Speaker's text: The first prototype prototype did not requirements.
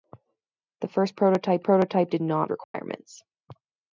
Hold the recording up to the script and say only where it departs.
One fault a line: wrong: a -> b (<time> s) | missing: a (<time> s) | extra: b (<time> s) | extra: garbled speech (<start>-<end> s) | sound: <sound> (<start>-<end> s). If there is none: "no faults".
sound: dropout (2.6-2.7 s)